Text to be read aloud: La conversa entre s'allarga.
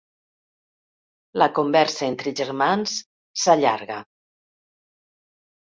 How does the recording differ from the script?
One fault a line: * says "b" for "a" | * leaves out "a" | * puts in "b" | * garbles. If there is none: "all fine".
* puts in "germans"